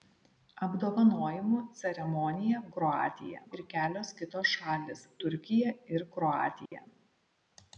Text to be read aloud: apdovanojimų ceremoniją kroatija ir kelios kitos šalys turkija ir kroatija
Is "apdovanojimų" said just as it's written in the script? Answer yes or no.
yes